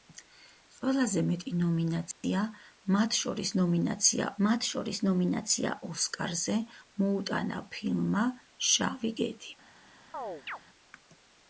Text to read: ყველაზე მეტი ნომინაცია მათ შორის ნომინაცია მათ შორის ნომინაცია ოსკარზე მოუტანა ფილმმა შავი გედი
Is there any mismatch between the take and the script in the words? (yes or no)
no